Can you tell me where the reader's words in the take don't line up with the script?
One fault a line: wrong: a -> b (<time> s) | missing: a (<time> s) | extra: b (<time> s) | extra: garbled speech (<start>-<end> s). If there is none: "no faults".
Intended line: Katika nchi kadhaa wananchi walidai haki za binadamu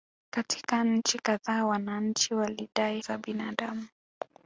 missing: haki (3.0 s)